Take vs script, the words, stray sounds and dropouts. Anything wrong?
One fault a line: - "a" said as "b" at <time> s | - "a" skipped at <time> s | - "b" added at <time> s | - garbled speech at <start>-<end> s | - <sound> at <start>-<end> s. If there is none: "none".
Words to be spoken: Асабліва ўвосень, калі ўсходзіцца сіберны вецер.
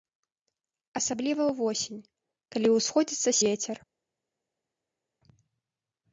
- "сіберны" skipped at 3.3 s